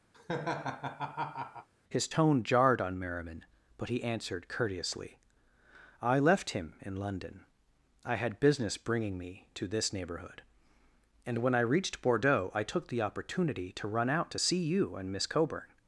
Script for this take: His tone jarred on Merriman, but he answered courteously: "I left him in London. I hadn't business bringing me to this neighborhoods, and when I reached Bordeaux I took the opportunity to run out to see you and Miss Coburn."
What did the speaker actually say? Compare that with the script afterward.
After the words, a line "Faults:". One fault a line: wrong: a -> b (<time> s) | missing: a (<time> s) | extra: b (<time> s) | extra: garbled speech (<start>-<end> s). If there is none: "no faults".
His tone jarred on Merriman, but he answered courteously: "I left him in London. I had business bringing me to this neighborhood, and when I reached Bordeaux I took the opportunity to run out to see you and Miss Coburn."
Faults:
wrong: hadn't -> had (8.1 s)
wrong: neighborhoods -> neighborhood (9.9 s)